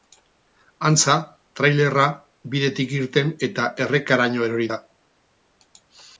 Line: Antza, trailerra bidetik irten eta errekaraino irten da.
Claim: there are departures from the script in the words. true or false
true